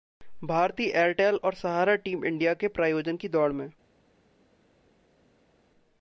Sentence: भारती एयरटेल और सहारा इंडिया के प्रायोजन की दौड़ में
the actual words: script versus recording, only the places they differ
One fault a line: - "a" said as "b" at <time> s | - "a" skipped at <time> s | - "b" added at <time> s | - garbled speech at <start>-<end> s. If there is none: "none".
- "टीम" added at 2.0 s